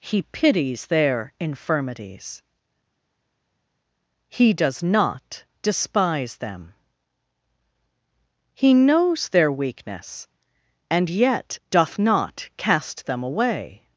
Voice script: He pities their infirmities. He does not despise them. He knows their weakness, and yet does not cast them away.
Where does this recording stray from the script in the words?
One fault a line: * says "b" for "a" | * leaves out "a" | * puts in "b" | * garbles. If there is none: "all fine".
* says "doth" for "does"